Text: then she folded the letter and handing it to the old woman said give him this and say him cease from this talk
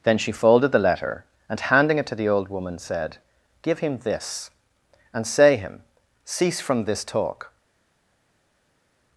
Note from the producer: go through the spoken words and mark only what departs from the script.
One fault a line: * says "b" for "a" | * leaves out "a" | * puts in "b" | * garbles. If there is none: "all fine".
all fine